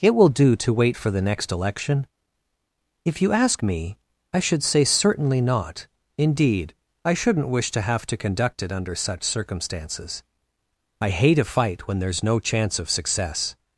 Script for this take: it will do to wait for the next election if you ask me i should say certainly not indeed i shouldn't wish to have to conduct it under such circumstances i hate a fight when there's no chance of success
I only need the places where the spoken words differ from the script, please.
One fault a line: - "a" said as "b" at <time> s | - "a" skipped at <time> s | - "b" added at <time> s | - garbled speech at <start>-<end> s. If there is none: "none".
none